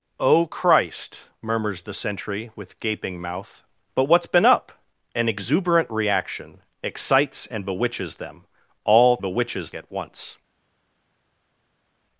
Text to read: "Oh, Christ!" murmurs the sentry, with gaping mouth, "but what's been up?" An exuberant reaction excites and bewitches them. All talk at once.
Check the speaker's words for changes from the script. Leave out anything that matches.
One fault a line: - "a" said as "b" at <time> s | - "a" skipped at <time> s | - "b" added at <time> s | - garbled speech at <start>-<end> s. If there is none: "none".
- "talk" said as "bewitches" at 9.2 s